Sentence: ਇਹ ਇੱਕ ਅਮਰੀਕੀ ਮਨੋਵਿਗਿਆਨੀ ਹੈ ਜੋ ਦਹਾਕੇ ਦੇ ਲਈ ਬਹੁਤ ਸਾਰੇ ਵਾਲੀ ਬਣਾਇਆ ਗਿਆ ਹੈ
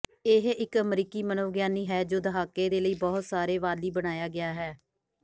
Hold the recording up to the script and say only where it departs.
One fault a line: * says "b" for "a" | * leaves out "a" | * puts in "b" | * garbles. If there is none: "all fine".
all fine